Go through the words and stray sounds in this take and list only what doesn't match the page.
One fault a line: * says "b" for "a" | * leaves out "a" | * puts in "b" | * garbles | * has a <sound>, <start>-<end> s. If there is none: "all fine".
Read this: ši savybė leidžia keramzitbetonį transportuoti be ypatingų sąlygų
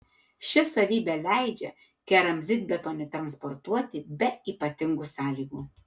all fine